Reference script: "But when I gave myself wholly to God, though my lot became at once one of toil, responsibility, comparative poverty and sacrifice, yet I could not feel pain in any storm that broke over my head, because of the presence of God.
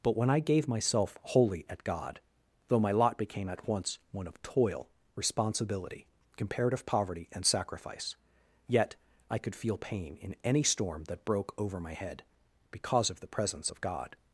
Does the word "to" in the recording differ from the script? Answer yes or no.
yes